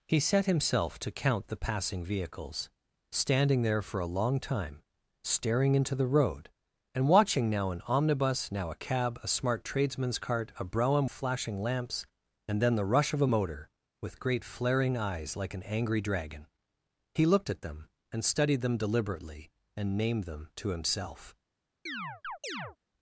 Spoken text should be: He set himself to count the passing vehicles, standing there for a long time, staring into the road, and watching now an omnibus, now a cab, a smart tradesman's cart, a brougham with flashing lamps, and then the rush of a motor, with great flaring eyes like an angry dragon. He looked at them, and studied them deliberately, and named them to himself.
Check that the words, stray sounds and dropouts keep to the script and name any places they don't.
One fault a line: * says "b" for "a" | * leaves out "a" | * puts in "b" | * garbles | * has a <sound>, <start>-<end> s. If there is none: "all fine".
* leaves out "with"
* has a chirp, 21.9-22.8 s